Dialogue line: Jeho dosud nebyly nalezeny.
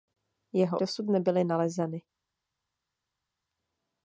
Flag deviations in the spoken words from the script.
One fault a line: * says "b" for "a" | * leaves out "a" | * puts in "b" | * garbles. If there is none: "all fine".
all fine